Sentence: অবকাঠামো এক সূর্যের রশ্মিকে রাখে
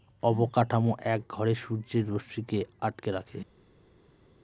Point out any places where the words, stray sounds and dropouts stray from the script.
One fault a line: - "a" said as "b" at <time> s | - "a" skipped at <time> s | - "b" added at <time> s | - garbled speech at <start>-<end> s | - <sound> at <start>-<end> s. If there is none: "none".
- "ঘরে" added at 1.3 s
- "আটকে" added at 2.8 s